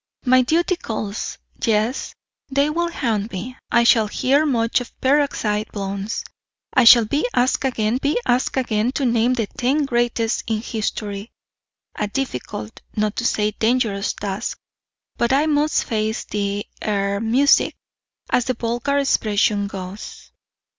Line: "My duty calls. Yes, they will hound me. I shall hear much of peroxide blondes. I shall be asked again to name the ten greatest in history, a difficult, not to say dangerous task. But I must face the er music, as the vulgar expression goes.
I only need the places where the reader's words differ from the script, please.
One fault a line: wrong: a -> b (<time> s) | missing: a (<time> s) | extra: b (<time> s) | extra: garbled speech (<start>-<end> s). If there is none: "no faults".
extra: be asked again (8.0 s)